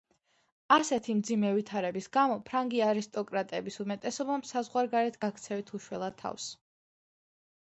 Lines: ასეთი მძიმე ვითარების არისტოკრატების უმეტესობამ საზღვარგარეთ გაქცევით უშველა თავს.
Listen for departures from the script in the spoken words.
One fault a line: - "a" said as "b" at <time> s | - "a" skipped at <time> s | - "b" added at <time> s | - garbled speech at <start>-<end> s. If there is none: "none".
- "გამო ფრანგი" added at 2.2 s